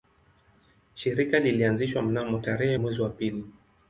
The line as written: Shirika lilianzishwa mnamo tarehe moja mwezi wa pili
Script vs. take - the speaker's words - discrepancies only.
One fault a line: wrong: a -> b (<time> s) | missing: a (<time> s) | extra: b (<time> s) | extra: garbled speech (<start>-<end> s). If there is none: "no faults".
missing: moja (2.8 s)